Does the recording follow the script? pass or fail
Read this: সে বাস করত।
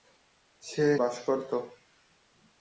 pass